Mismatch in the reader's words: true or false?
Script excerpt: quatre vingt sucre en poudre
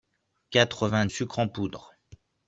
false